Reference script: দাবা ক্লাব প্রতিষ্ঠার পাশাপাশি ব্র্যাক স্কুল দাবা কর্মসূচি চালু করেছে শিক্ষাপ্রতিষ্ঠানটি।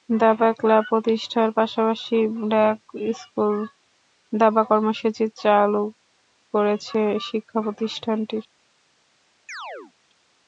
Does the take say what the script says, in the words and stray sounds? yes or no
no